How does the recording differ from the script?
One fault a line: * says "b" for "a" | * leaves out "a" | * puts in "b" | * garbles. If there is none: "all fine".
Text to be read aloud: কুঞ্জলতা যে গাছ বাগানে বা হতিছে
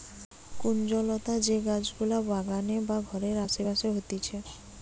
* puts in "গুলা"
* puts in "ঘরের আসে পাশে"